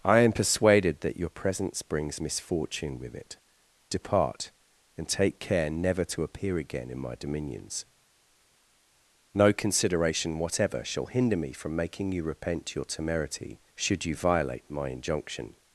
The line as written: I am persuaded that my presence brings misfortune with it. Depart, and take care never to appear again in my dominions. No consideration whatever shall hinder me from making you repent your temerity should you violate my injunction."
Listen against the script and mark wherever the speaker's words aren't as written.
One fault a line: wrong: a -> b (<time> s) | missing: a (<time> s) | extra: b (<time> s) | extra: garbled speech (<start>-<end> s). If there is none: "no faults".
wrong: my -> your (1.2 s)